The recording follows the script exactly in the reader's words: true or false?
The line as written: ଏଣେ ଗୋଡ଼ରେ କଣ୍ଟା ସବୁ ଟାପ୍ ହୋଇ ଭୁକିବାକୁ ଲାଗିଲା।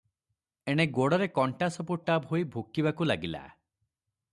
true